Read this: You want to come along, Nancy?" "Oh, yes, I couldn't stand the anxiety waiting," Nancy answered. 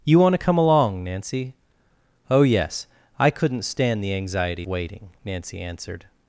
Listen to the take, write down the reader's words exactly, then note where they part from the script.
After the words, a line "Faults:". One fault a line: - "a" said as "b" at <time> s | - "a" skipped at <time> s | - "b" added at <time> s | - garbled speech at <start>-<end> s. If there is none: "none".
You want to come along, Nancy?" "Oh, yes, I couldn't stand the anxiety waiting," Nancy answered.
Faults:
none